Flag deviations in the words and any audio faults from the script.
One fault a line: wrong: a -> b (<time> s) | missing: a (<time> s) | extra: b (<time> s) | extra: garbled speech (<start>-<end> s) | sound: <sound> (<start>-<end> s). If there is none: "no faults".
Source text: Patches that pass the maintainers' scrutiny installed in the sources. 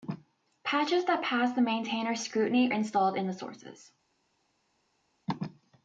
no faults